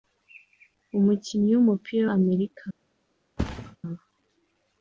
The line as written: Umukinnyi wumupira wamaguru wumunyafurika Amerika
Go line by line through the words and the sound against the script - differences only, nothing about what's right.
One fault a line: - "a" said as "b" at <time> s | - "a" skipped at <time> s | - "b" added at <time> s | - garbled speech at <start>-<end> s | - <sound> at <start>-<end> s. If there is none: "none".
- "wamaguru wumunyafurika" skipped at 2.0 s
- thud at 3.4-3.8 s